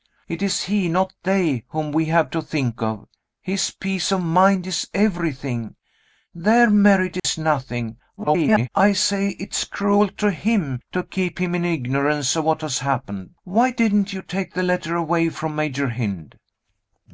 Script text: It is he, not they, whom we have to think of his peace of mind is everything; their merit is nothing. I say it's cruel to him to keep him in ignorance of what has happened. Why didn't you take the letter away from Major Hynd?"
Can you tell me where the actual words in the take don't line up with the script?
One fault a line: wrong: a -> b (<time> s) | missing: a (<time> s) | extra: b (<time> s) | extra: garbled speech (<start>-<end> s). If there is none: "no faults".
extra: garbled speech (8.2-8.7 s)